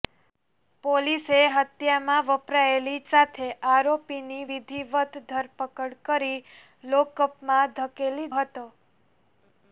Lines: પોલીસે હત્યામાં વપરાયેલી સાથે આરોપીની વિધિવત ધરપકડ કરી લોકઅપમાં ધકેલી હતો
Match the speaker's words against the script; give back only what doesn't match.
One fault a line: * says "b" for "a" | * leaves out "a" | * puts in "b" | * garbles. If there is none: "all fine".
all fine